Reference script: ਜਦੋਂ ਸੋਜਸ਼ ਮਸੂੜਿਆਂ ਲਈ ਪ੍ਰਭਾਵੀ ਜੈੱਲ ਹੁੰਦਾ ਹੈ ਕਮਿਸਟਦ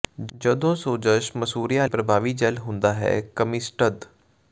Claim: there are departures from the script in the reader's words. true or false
true